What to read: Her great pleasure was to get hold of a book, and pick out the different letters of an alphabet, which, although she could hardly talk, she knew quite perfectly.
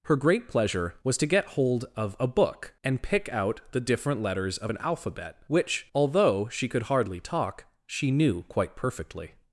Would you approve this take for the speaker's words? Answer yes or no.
yes